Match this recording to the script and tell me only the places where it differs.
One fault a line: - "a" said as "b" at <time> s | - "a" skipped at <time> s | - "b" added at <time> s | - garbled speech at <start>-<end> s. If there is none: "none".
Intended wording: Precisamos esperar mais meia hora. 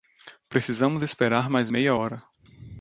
none